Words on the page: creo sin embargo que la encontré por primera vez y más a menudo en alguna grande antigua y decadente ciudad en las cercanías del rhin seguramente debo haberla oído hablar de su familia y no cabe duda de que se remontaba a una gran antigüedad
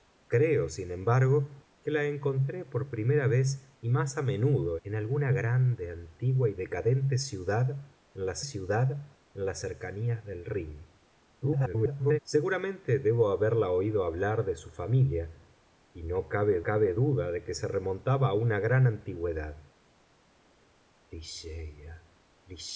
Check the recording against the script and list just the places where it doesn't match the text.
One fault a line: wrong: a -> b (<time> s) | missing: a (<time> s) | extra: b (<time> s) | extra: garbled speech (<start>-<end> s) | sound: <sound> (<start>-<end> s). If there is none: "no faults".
extra: ciudad en las (8.4 s)
extra: garbled speech (11.4-12.2 s)
extra: cabe (16.6 s)